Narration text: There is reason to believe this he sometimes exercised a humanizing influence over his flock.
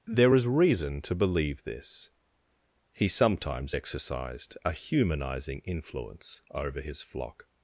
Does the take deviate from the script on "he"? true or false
false